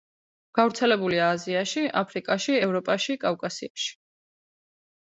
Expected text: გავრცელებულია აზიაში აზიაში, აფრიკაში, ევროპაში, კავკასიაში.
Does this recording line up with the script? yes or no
no